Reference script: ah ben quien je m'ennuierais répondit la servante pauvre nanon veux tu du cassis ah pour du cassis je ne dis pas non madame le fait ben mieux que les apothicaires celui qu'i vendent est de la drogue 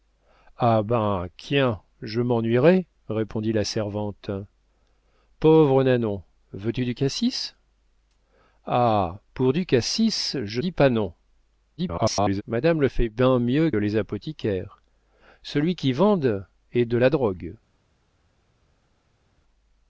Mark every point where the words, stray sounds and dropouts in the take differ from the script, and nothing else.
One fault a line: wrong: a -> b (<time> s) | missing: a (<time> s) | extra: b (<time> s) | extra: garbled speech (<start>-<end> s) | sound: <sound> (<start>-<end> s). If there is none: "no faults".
missing: ne (10.6 s)
extra: garbled speech (11.8-12.4 s)
missing: que (13.7 s)